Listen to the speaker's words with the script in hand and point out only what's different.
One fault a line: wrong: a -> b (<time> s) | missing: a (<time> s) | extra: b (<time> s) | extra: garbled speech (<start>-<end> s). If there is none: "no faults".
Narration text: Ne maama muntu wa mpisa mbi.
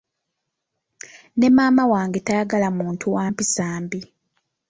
extra: wange tayagala (1.9 s)